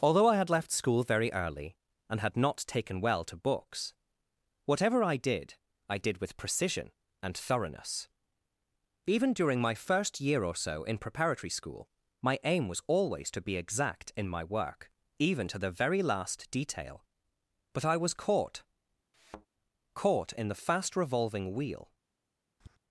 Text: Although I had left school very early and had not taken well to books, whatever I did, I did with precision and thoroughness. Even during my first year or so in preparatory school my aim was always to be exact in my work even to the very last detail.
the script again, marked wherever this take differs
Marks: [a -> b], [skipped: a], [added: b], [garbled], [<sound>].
Although I had left school very early and had not taken well to books, whatever I did, I did with precision and thoroughness. Even during my first year or so in preparatory school my aim was always to be exact in my work even to the very last detail. [added: But I was caught caught in the fast revolving wheel] [thud] [tap]